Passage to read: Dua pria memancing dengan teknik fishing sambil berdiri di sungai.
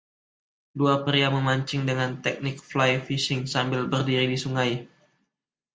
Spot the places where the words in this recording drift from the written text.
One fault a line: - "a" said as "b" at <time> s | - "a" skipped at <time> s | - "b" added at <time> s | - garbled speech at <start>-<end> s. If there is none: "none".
- "fly" added at 2.6 s